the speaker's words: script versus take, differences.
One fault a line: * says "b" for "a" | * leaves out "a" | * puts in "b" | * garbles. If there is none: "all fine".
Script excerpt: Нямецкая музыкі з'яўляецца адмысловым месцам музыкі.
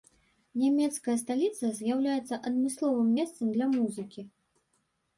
* says "сталіца" for "музыкі"
* puts in "для"